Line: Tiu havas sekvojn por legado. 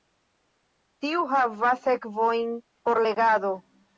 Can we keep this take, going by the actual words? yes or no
yes